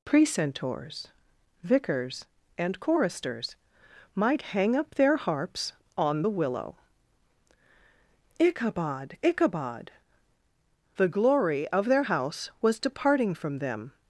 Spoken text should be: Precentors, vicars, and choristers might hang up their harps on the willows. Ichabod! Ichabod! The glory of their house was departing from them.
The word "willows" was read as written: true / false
false